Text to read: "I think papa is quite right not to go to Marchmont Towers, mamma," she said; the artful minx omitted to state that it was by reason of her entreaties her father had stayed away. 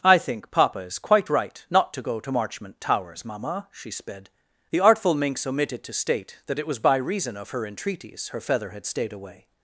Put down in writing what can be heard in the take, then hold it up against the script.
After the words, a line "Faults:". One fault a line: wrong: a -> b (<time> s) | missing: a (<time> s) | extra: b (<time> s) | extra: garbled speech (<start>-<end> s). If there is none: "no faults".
"I think papa is quite right not to go to Marchmont Towers, mamma," she sped; the artful minx omitted to state that it was by reason of her entreaties her feather had stayed away.
Faults:
wrong: said -> sped (3.9 s)
wrong: father -> feather (8.4 s)